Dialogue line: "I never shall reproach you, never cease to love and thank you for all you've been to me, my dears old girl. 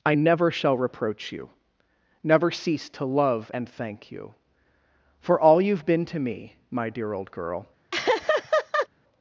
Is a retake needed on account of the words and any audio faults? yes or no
yes